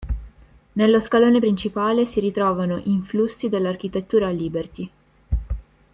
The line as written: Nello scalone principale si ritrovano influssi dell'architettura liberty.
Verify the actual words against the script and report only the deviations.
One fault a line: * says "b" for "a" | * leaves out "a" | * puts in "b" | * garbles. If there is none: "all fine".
all fine